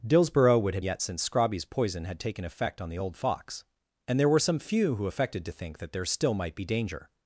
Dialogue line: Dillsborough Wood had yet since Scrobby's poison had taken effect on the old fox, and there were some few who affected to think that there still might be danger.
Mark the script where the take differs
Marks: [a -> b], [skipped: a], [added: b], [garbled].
Dillsborough Wood had yet since Scrobby's poison had taken effect on the old fox, and there were some few who affected to think that there still might be danger.